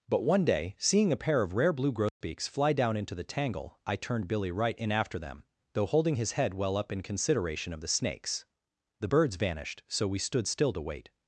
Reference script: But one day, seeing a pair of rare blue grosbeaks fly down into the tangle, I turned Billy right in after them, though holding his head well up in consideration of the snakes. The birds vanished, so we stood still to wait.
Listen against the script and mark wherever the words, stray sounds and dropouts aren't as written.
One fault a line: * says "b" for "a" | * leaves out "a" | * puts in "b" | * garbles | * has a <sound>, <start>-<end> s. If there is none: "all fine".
* has a dropout, 2.1-2.2 s